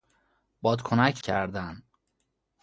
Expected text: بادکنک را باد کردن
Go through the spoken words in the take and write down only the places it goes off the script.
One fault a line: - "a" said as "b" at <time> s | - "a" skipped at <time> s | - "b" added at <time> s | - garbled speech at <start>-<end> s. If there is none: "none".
- "را باد" skipped at 1.2 s